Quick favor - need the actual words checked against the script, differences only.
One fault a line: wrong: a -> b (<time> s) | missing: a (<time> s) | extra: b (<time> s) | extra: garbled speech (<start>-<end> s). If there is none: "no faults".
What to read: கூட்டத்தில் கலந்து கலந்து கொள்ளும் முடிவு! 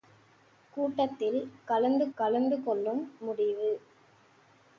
no faults